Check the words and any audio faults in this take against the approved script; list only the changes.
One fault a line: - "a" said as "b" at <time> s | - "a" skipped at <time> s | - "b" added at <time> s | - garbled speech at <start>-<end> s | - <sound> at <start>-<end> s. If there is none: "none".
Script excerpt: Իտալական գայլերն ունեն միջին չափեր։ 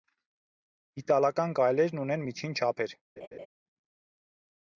- laugh at 3.2-3.5 s